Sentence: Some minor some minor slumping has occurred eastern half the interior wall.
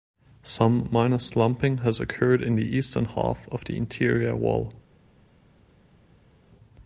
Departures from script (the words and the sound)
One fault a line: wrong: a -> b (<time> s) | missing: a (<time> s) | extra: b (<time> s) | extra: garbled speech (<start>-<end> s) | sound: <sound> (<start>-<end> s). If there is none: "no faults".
missing: some minor (1.2 s)
extra: in the (2.4 s)
extra: of (3.5 s)